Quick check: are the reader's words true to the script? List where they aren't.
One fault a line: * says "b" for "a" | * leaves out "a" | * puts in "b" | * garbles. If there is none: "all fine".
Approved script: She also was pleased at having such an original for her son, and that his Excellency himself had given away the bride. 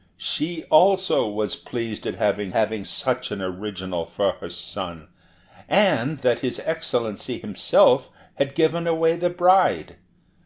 * puts in "having"